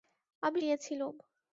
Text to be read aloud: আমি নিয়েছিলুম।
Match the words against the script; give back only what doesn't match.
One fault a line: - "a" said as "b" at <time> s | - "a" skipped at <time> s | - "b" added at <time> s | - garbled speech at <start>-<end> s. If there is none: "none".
none